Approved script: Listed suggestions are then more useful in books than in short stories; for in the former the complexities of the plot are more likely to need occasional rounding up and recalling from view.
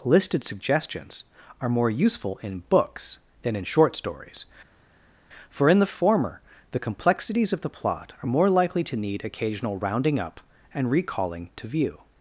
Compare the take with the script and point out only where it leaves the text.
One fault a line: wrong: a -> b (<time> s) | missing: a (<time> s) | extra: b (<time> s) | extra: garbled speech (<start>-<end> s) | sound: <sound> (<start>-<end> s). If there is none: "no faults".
missing: then (1.7 s)
wrong: from -> to (11.5 s)